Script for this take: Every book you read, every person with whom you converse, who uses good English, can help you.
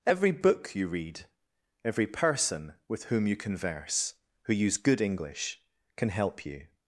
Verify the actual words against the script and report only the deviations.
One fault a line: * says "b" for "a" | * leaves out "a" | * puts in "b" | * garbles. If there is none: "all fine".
* says "use" for "uses"